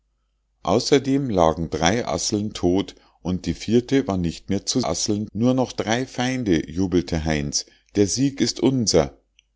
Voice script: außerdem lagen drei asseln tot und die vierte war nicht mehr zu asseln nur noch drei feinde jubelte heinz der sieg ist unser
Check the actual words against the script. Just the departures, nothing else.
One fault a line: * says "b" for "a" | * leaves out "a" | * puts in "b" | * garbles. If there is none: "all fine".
all fine